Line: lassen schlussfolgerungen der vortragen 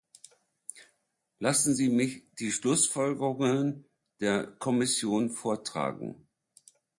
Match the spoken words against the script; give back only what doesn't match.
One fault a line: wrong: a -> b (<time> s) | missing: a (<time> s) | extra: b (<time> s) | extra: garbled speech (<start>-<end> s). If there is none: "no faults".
extra: sie mich die (1.7 s)
extra: kommission (4.5 s)